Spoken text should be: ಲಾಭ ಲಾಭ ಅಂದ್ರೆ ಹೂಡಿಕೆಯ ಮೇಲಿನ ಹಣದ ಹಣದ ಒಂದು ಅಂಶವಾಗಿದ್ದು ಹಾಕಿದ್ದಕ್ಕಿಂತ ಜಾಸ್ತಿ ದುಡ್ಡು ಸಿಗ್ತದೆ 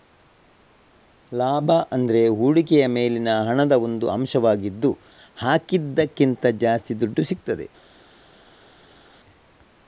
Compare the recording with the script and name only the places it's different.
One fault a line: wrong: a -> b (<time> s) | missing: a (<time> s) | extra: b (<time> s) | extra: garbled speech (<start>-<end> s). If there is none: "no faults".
missing: ಲಾಭ (1.7 s)
missing: ಹಣದ (3.7 s)